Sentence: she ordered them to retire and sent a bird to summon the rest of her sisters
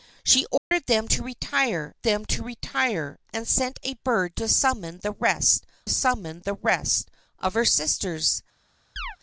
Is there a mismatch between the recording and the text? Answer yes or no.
yes